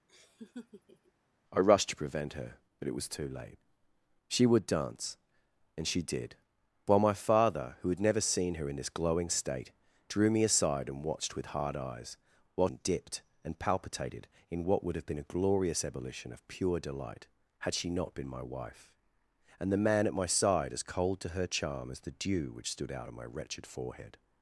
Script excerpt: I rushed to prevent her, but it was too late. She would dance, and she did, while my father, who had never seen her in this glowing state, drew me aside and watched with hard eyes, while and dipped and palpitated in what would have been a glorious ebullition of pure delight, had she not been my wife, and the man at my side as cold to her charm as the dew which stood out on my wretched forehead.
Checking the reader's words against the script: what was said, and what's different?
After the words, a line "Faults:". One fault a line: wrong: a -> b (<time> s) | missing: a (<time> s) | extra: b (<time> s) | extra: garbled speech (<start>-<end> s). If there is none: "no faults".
I rushed to prevent her, but it was too late. She would dance, and she did, while my father, who had never seen her in this glowing state, drew me aside and watched with hard eyes, while and dipped and palpitated in what would have been a glorious ebullition of pure delight, had she not been my wife, and the man at my side as cold to her charm as the dew which stood out on my wretched forehead.
Faults:
no faults